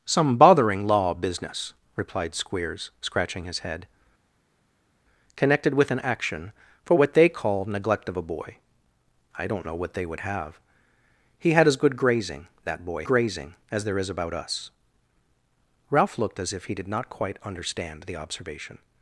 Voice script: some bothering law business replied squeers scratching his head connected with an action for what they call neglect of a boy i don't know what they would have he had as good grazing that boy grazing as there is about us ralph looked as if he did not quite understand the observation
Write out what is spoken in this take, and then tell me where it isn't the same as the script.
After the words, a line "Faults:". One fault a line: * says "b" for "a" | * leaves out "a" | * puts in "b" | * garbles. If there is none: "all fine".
some bothering law business replied squeers scratching his head connected with an action for what they call neglect of a boy i don't know what they would have he had as good grazing that boy grazing as there is about us ralph looked as if he did not quite understand the observation
Faults:
all fine